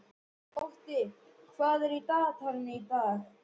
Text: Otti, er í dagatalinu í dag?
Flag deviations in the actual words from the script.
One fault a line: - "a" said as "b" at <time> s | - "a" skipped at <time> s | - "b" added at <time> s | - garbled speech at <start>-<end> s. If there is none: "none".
- "hvað" added at 1.6 s